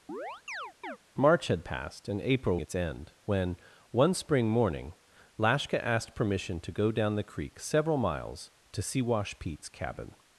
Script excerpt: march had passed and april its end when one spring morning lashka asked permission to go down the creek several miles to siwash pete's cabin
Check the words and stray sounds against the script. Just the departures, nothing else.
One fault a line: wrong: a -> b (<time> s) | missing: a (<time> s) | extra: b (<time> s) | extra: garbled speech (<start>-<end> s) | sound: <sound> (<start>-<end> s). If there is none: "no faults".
sound: chirp (0.1-1.0 s)